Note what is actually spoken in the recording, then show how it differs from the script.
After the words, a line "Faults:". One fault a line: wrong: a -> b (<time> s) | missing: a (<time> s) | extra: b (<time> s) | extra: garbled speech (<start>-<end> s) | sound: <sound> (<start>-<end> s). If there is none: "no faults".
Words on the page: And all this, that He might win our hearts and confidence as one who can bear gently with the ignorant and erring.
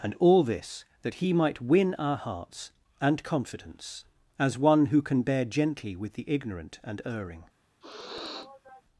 And all this, that He might win our hearts and confidence as one who can bear gently with the ignorant and erring.
Faults:
sound: sniff (7.8-8.8 s)